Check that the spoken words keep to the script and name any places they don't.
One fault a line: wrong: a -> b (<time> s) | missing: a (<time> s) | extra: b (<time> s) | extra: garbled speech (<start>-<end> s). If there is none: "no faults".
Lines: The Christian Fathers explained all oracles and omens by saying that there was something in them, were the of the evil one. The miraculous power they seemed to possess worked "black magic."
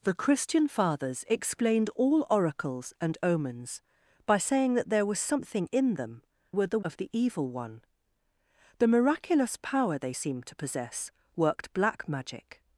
no faults